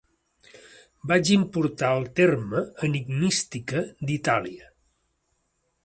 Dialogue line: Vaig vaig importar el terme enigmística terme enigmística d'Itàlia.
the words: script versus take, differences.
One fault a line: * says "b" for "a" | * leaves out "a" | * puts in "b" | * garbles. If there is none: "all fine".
* leaves out "vaig"
* leaves out "terme enigmística"